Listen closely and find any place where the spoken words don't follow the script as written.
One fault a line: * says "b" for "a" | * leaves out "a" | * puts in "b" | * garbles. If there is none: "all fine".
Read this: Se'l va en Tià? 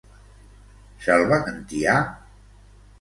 all fine